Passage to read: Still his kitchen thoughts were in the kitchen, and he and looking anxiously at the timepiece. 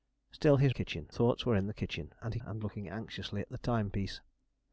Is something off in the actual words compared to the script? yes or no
no